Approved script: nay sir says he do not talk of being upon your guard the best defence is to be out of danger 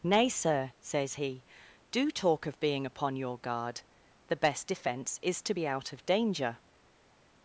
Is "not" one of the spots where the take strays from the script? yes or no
yes